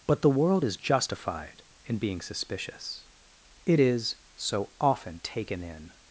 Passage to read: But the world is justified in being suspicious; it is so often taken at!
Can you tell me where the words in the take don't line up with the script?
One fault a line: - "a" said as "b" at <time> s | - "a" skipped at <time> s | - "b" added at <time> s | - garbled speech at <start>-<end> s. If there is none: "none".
- "at" said as "in" at 5.6 s